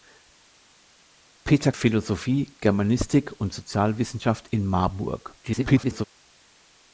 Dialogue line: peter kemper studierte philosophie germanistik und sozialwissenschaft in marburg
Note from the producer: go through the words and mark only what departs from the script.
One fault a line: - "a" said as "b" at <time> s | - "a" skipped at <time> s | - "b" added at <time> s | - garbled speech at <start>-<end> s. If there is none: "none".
- "kemper studierte" skipped at 1.7 s
- garbled speech at 5.4-6.1 s